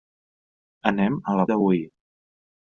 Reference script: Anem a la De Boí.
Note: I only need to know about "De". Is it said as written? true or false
true